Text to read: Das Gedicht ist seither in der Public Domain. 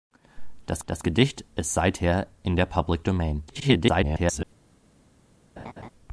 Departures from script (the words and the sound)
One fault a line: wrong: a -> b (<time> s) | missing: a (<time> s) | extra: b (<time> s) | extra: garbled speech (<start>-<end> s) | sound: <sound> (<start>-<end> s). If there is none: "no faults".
extra: das (0.9 s)
extra: garbled speech (3.5-4.4 s)
sound: laugh (5.6-5.9 s)